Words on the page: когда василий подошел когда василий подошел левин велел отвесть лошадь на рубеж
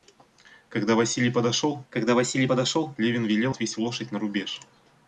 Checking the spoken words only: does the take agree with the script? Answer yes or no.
yes